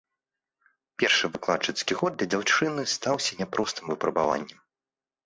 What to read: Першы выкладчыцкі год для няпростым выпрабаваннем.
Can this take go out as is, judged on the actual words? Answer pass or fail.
fail